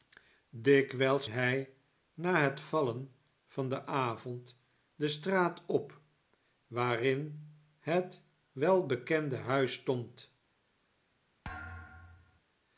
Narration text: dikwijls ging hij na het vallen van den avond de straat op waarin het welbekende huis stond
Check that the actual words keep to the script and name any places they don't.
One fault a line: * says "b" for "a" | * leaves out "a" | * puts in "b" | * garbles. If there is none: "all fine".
* leaves out "ging"